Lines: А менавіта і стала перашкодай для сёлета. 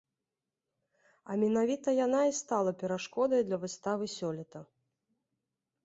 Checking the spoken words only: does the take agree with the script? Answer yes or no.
no